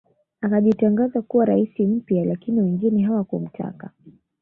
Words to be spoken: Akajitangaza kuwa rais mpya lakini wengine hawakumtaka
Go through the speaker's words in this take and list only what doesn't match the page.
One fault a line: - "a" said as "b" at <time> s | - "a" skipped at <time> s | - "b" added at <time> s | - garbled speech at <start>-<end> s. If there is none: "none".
none